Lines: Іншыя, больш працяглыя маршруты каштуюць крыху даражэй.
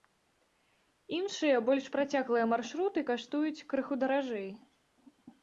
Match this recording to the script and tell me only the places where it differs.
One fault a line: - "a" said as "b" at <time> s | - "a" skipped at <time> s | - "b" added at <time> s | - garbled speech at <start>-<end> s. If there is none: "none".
none